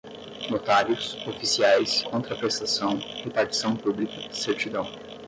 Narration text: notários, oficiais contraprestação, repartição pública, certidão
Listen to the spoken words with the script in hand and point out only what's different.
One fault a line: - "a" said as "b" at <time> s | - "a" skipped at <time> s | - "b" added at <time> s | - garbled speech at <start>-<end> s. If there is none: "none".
none